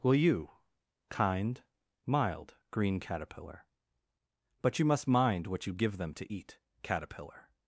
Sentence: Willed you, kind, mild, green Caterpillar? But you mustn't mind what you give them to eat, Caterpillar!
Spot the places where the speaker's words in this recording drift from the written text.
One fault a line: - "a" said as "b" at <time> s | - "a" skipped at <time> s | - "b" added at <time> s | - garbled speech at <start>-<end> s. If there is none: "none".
- "Willed" said as "Will" at 0.0 s
- "mustn't" said as "must" at 4.8 s